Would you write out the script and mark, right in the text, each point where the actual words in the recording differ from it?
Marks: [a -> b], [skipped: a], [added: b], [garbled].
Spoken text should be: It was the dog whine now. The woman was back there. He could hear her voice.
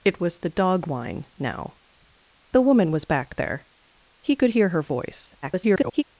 It was the dog whine now. The woman was back there. He could hear her voice. [garbled]